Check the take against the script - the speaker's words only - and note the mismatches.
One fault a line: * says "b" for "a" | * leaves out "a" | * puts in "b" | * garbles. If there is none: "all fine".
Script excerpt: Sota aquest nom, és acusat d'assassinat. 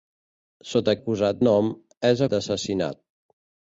* says "acusat" for "aquest"
* leaves out "acusat"